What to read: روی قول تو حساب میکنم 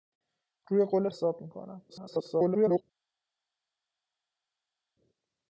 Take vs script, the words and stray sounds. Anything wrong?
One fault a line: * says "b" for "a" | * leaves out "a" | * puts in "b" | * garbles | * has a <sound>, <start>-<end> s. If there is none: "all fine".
* leaves out "تو"
* garbles